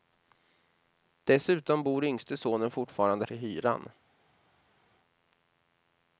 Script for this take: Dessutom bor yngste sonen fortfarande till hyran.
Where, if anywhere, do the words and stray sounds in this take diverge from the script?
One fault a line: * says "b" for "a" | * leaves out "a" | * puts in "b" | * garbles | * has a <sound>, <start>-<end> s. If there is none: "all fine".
all fine